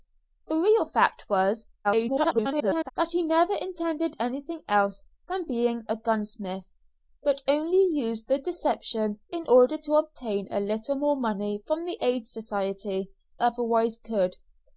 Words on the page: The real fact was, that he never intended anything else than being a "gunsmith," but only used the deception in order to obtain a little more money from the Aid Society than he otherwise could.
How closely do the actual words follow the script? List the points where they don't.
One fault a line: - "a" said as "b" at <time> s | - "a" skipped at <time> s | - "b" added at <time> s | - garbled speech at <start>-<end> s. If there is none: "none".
- garbled speech at 1.8-2.9 s
- "than he" skipped at 13.1 s